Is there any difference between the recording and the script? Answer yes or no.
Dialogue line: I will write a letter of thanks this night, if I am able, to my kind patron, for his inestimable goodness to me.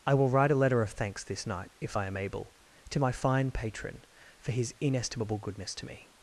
yes